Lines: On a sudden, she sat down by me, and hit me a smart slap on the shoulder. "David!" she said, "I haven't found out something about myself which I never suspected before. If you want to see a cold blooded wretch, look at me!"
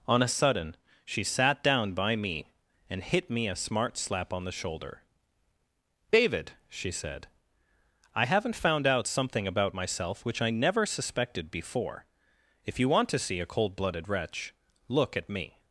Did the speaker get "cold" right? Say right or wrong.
right